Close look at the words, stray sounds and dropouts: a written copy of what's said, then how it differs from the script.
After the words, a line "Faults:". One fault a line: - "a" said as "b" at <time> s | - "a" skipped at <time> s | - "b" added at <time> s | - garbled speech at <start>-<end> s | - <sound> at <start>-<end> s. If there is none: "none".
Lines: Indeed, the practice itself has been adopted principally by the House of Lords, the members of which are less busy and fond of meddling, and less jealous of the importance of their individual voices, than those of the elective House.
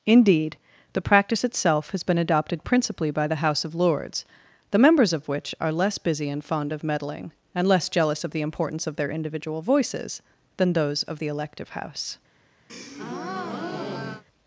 Indeed, the practice itself has been adopted principally by the House of Lords, the members of which are less busy and fond of meddling, and less jealous of the importance of their individual voices, than those of the elective House.
Faults:
- breath at 12.7-14.2 s